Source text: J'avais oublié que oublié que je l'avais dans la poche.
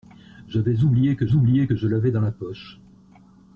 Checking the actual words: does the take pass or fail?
pass